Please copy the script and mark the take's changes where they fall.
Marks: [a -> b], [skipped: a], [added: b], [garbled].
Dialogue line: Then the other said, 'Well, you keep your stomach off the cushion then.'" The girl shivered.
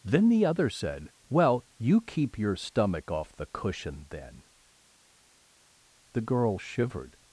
Then the other said, 'Well, you keep your stomach off the cushion then.'" The girl shivered.